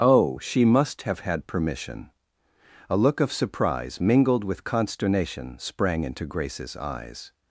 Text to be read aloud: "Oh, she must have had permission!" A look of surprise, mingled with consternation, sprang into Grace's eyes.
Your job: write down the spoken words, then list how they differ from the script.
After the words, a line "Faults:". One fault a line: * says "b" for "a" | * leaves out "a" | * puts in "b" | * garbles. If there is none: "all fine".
"Oh, she must have had permission!" A look of surprise, mingled with consternation, sprang into Grace's eyes.
Faults:
all fine